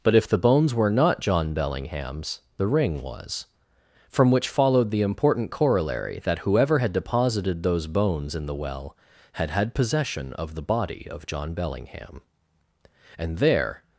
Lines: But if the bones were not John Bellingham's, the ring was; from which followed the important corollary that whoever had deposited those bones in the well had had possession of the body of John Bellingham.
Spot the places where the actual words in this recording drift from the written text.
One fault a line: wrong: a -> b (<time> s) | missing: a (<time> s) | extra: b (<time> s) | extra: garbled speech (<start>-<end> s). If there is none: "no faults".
extra: And there (13.2 s)